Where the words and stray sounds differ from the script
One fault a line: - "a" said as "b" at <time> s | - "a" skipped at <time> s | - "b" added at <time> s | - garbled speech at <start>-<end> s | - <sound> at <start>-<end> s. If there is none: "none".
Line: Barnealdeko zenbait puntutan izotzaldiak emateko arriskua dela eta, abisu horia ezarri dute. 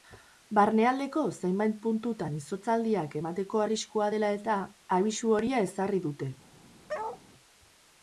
- bark at 6.9-7.2 s